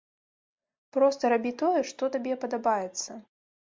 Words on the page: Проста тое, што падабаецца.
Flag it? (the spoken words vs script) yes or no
yes